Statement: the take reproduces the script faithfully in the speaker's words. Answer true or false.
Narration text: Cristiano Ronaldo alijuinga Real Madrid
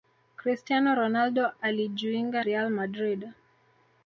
true